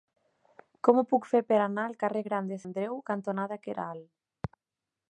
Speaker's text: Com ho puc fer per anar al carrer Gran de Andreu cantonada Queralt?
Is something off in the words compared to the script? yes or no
no